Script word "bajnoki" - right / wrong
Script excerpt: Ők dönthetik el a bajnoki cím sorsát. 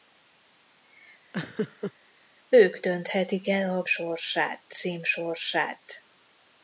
wrong